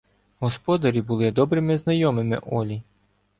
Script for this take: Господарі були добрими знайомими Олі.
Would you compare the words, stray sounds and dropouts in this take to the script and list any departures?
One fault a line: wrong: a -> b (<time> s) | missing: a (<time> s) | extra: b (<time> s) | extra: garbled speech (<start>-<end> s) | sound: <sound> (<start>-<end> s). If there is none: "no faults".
no faults